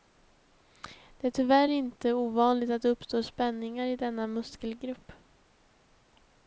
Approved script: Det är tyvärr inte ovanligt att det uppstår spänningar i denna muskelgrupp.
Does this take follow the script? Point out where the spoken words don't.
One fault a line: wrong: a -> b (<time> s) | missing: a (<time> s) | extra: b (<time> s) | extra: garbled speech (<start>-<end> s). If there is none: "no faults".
no faults